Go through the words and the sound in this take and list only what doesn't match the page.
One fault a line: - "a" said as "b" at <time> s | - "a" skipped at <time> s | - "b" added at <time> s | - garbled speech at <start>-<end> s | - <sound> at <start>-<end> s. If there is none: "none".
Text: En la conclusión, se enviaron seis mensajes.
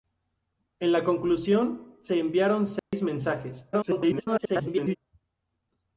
- dropout at 2.8-2.9 s
- garbled speech at 3.7-5.0 s